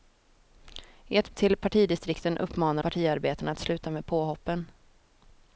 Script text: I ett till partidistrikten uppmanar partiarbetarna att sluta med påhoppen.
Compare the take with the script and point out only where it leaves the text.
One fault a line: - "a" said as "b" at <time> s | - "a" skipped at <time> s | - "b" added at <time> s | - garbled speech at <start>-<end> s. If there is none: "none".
none